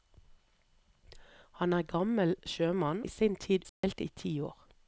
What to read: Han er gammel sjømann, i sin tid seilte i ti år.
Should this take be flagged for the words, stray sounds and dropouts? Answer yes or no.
yes